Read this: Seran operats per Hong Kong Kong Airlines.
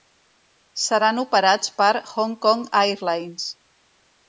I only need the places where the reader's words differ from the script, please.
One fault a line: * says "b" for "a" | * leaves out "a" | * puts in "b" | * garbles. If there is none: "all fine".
* leaves out "Kong"